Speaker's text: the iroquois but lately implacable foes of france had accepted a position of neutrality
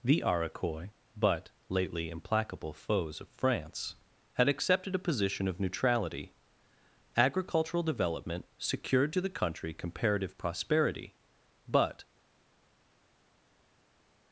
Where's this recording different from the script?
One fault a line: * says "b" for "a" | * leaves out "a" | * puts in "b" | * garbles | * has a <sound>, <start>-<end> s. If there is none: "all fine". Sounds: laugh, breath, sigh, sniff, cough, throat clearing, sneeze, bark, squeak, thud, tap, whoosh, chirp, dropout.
* puts in "agricultural development secured to the country comparative prosperity but"